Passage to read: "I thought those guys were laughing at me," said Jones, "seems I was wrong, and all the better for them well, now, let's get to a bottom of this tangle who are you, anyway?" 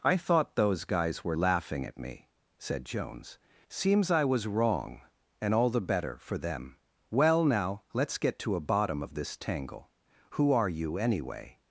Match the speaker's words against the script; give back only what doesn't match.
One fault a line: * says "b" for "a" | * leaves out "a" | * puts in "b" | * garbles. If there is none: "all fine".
all fine